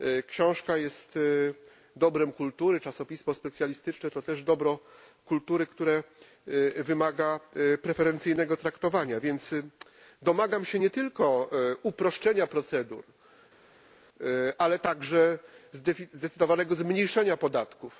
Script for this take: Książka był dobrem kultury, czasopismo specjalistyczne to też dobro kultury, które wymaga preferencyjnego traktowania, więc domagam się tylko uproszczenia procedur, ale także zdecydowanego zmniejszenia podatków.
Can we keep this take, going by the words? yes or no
no